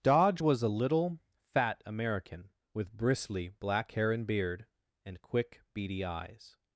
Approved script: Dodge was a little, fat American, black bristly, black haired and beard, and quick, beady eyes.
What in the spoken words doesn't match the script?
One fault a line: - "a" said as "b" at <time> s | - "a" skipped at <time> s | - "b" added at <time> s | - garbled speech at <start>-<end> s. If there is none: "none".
- "black" said as "with" at 2.7 s
- "haired" said as "hair" at 3.9 s